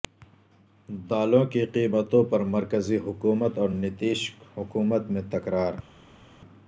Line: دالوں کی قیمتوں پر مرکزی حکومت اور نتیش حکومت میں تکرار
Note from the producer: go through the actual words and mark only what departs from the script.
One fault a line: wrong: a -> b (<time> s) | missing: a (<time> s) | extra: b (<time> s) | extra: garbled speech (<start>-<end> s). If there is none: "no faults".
no faults